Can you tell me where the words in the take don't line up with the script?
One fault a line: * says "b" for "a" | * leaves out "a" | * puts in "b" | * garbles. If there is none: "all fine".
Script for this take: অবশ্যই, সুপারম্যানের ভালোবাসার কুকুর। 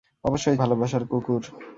* leaves out "সুপারম্যানের"